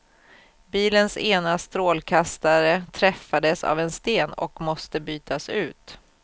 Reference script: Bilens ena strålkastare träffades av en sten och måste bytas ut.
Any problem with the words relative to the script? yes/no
no